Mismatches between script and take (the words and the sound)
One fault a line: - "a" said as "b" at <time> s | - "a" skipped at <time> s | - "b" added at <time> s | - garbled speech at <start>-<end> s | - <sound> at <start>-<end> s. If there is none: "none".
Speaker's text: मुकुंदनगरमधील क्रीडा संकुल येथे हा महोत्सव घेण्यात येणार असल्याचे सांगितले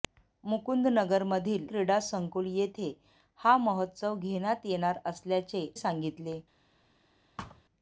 - thud at 7.4-7.6 s